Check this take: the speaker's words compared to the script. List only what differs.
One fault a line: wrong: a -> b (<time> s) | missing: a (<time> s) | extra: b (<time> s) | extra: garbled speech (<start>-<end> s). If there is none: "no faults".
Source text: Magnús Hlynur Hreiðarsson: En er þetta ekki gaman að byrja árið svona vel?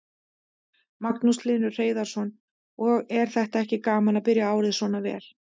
wrong: En -> Og (2.9 s)